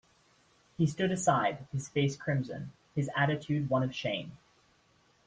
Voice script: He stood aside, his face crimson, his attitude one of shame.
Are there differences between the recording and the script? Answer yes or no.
no